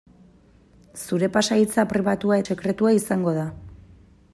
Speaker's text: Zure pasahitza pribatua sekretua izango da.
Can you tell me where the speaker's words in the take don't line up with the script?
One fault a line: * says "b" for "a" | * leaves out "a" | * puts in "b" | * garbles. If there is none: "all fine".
all fine